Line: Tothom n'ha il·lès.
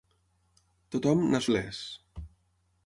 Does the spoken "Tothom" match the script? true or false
true